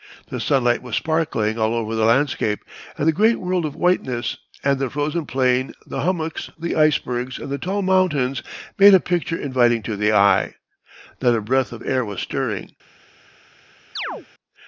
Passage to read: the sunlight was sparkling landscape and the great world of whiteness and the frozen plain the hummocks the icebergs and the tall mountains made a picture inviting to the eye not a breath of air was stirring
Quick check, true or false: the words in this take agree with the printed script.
false